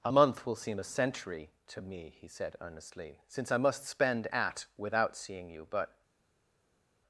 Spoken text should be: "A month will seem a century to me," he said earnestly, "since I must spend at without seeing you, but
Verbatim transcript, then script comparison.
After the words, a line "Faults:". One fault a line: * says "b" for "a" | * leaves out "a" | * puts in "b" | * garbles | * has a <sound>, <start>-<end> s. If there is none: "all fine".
"A month will seem a century to me," he said earnestly, "since I must spend at without seeing you, but
Faults:
all fine